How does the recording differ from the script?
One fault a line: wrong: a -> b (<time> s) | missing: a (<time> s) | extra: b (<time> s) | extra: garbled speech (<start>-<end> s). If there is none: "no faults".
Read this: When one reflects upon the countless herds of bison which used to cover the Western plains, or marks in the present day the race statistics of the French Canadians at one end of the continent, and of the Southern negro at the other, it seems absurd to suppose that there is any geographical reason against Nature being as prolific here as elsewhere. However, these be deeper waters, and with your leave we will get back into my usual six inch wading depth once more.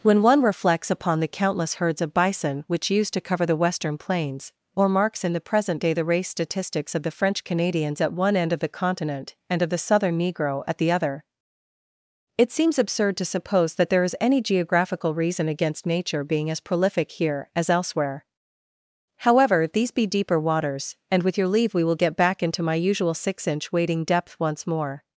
no faults